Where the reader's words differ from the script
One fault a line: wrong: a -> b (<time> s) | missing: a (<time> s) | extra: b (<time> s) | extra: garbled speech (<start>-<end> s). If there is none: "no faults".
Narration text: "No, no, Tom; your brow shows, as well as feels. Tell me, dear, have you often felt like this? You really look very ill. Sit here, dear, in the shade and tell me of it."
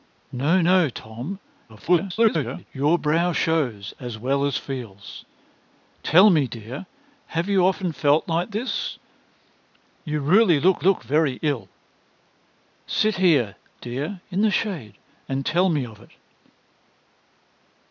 extra: garbled speech (1.7-2.7 s)
extra: look (10.8 s)